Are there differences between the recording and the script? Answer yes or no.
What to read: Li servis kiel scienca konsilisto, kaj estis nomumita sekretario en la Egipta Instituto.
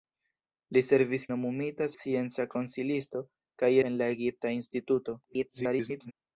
yes